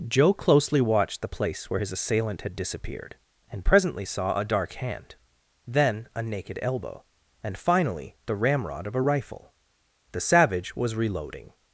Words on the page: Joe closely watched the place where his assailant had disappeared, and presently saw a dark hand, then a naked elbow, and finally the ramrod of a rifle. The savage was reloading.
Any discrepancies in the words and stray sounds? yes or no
no